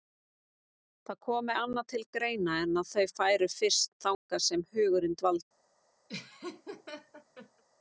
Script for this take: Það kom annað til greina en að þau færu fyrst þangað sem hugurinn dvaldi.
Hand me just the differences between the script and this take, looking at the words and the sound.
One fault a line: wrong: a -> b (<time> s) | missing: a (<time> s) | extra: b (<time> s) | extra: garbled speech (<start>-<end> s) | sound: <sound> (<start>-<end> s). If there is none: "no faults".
sound: dropout (4.1-4.3 s)
sound: laugh (6.1-7.6 s)